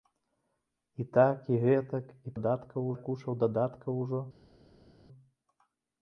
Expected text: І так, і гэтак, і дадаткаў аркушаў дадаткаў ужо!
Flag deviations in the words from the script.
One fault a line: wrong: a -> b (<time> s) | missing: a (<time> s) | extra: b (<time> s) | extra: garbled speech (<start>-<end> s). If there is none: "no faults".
no faults